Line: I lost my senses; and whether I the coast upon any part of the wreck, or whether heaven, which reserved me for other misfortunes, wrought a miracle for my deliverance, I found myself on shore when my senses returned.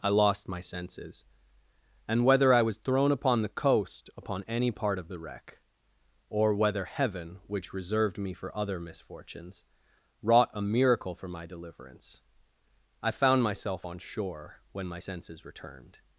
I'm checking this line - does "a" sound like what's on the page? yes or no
yes